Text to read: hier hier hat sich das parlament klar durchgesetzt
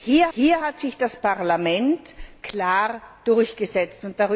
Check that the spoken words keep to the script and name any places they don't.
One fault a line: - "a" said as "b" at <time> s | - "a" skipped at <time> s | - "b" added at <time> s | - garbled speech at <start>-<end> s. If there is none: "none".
none